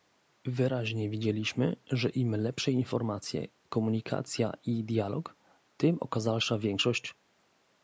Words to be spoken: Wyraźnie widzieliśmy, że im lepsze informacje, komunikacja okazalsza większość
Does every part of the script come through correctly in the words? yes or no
no